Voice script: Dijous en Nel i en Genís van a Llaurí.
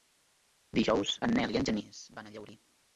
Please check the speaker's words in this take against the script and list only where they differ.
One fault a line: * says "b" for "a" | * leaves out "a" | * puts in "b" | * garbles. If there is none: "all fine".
all fine